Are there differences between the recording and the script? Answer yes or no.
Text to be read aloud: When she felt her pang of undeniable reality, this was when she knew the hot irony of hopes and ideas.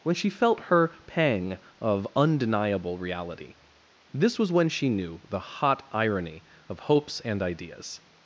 no